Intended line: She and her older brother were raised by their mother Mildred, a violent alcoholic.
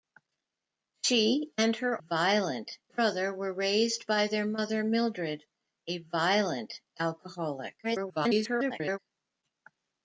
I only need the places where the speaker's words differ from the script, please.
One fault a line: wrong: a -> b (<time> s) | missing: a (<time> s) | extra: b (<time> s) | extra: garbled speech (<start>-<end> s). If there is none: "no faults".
wrong: older -> violent (2.0 s)
extra: garbled speech (7.8-9.0 s)